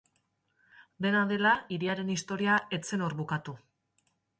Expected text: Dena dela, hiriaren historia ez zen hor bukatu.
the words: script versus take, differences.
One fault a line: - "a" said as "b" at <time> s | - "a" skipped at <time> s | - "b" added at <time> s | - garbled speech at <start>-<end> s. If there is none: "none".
none